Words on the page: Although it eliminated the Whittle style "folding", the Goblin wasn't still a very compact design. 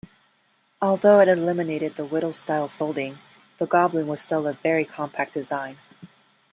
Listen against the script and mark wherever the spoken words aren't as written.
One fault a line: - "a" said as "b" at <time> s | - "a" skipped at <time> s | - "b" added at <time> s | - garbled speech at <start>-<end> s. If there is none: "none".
- "wasn't" said as "was" at 4.1 s